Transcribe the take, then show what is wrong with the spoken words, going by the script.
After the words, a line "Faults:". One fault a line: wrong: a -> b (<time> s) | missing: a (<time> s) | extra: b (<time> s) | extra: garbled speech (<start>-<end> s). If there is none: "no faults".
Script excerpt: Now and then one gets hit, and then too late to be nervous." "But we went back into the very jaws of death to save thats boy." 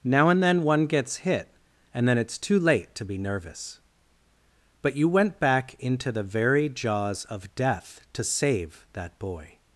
Now and then one gets hit, and then it's too late to be nervous." "But you went back into the very jaws of death to save that boy."
Faults:
extra: it's (2.2 s)
wrong: we -> you (5.0 s)
wrong: thats -> that (8.9 s)